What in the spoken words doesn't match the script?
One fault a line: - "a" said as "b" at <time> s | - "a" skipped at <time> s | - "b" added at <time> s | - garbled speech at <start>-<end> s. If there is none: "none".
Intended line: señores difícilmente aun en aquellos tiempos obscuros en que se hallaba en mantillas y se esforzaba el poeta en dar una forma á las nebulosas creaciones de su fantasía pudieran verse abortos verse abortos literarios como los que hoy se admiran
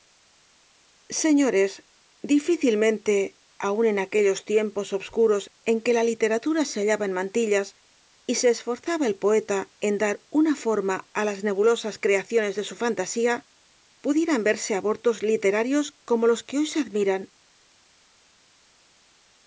- "la literatura" added at 6.0 s
- "verse abortos" skipped at 15.2 s